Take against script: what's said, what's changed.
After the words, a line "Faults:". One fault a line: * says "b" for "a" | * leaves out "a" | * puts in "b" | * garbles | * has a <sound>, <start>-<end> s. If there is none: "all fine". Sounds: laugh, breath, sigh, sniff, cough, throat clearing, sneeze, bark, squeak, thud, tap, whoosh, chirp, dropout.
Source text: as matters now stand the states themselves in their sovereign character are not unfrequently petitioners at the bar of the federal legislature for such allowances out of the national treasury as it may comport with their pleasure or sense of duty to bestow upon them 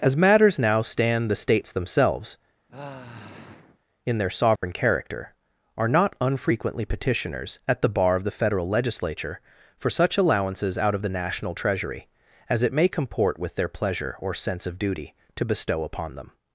as matters now stand the states themselves in their sovereign character are not unfrequently petitioners at the bar of the federal legislature for such allowances out of the national treasury as it may comport with their pleasure or sense of duty to bestow upon them
Faults:
* has a sigh, 2.7-3.8 s
* has a dropout, 4.6-4.6 s